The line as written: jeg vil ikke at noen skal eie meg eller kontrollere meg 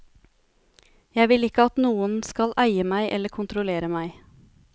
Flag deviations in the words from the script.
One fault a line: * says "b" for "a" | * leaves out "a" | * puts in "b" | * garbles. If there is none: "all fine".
all fine